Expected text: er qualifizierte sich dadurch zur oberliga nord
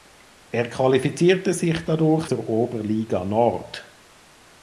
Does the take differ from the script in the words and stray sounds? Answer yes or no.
no